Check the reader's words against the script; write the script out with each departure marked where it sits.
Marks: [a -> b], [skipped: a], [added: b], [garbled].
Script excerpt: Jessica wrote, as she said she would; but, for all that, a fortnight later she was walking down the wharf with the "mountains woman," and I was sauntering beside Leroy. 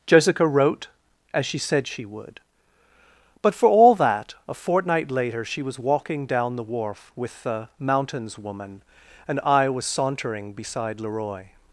Jessica wrote, as she said she would; but, for all that, a fortnight later she was walking down the wharf with the "mountains woman," and I was sauntering beside Leroy.